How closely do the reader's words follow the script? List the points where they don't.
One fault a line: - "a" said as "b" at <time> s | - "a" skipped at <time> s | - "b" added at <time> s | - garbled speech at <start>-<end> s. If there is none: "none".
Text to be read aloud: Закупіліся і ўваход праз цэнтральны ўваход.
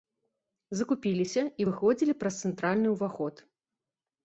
- "ўваход" said as "выходзілі" at 1.7 s